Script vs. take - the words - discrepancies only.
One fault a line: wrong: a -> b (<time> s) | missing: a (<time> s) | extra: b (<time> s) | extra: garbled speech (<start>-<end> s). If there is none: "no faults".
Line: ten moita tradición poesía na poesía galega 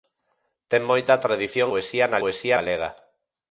no faults